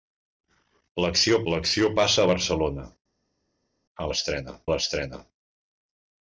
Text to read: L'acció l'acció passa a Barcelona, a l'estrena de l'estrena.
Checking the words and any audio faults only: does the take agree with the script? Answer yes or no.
yes